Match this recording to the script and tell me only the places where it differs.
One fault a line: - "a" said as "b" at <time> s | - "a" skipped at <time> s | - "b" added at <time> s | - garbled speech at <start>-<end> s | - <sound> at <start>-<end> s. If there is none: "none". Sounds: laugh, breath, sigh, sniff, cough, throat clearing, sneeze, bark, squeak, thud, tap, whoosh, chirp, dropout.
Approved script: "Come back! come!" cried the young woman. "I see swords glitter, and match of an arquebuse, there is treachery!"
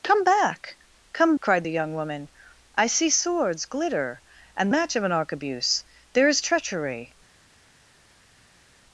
none